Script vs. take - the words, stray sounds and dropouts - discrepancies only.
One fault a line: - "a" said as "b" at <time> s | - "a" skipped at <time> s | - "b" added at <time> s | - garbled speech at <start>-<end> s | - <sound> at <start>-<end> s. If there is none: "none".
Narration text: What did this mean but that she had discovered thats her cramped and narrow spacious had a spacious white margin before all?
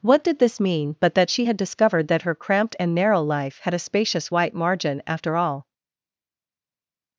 - "thats" said as "that" at 2.1 s
- "spacious" said as "life" at 3.2 s
- "before" said as "after" at 5.1 s